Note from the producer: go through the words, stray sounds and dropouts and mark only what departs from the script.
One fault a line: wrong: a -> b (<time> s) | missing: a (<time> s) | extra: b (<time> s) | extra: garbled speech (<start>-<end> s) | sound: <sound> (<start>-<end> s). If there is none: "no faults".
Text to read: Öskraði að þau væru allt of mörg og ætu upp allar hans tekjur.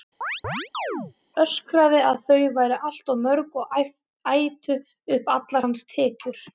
sound: chirp (0.2-1.1 s)